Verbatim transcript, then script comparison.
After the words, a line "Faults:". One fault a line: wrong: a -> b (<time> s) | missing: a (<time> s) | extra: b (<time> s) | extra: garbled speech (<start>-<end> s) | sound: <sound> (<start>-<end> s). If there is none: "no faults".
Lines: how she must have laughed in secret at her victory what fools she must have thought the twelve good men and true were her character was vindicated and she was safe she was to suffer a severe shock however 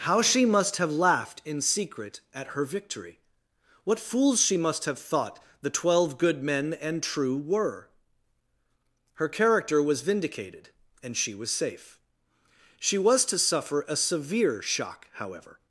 how she must have laughed in secret at her victory what fools she must have thought the twelve good men and true were her character was vindicated and she was safe she was to suffer a severe shock however
Faults:
no faults